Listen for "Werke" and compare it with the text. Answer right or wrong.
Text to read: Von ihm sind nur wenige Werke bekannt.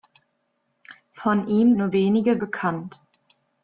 wrong